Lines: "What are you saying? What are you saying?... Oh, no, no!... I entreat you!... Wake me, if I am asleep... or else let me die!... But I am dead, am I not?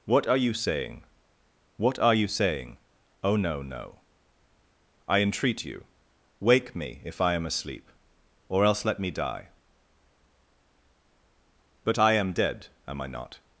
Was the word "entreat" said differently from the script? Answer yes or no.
no